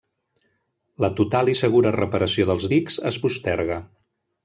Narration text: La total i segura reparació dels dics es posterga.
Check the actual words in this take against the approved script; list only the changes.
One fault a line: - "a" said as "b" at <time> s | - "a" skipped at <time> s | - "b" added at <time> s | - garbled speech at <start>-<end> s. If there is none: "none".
none